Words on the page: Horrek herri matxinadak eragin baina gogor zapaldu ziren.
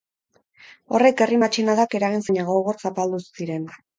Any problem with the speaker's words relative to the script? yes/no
no